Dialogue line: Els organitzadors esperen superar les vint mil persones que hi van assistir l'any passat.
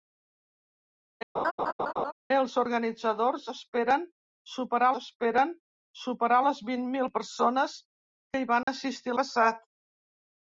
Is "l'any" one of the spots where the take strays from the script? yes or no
yes